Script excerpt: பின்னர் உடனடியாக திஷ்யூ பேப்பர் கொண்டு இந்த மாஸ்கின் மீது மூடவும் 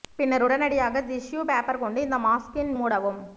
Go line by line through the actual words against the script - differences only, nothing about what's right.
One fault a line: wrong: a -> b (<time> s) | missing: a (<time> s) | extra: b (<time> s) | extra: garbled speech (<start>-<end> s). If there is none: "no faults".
missing: மீது (2.7 s)